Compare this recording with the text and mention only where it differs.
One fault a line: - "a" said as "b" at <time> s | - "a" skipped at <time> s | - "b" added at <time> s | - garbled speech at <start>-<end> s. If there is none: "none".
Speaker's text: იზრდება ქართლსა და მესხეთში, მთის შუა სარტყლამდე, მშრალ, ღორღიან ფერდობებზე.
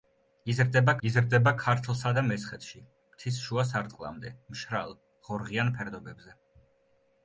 - "იზრდება" added at 1.1 s